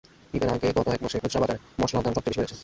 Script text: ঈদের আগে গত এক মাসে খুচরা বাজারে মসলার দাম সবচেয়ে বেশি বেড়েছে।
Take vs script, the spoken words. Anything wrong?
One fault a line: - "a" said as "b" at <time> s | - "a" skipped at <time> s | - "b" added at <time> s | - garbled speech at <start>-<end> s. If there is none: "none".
none